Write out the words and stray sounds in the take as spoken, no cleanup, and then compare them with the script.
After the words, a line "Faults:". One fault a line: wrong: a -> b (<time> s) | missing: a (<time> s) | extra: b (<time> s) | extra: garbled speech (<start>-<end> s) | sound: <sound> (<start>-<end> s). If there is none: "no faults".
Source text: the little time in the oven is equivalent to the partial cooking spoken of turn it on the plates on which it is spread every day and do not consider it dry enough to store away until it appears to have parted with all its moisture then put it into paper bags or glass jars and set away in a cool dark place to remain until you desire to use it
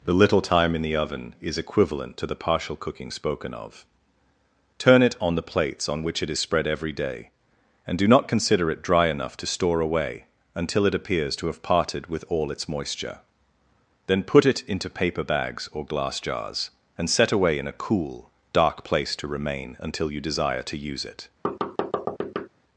the little time in the oven is equivalent to the partial cooking spoken of turn it on the plates on which it is spread every day and do not consider it dry enough to store away until it appears to have parted with all its moisture then put it into paper bags or glass jars and set away in a cool dark place to remain until you desire to use it
Faults:
sound: thud (21.4-22.5 s)